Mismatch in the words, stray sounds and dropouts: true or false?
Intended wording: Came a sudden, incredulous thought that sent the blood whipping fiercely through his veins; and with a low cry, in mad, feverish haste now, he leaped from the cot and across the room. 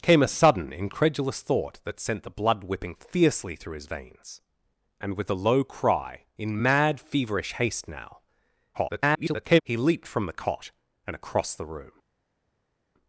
true